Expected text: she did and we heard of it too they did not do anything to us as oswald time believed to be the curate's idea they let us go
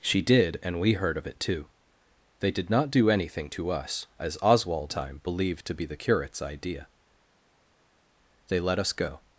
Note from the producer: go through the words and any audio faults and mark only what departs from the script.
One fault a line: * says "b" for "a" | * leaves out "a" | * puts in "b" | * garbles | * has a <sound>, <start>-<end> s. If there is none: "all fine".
all fine